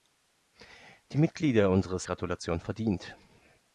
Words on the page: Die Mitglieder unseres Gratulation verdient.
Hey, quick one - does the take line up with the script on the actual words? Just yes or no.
yes